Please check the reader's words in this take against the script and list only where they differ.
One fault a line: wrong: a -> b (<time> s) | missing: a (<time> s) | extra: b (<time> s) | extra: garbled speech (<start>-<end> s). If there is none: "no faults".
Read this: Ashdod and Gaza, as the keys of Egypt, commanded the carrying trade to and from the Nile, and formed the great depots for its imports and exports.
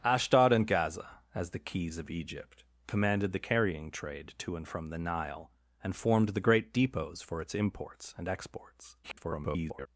extra: garbled speech (9.0-9.9 s)